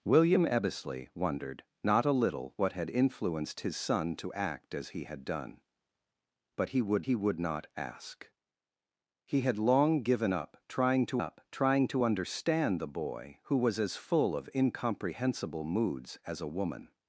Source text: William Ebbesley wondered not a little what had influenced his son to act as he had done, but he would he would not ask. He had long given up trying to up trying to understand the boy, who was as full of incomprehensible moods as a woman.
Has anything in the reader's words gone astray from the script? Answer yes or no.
no